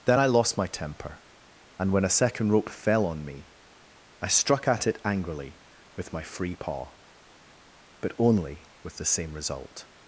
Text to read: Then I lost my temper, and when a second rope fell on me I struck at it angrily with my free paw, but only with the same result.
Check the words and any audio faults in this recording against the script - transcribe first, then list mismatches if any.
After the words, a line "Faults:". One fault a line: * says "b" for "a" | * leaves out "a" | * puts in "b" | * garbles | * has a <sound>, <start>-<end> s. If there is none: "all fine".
Then I lost my temper, and when a second rope fell on me I struck at it angrily with my free paw, but only with the same result.
Faults:
all fine